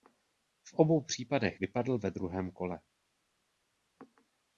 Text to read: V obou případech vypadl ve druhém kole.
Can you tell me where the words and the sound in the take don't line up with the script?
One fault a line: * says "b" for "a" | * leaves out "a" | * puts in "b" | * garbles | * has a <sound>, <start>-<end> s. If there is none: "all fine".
all fine